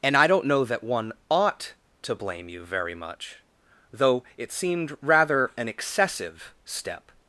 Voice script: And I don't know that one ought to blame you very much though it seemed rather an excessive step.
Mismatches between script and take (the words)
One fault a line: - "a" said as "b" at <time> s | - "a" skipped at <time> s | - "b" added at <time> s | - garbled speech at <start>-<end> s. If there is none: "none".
none